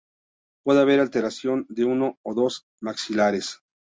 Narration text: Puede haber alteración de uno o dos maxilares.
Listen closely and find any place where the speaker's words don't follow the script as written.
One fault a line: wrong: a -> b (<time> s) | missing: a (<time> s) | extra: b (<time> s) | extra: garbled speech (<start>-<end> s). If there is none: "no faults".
no faults